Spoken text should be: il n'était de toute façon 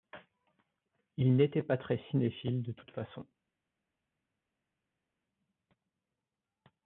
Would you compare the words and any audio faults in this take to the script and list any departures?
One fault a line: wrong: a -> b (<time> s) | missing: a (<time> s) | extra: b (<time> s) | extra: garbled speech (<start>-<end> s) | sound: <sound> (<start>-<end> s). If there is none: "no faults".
extra: pas très cinéphile (1.6 s)